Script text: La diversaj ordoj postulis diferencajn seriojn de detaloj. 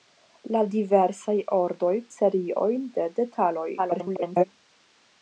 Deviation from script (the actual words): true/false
true